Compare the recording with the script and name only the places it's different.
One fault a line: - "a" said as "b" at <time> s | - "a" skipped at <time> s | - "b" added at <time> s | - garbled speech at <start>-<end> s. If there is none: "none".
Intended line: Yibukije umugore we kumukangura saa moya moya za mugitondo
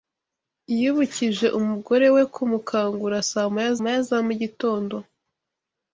none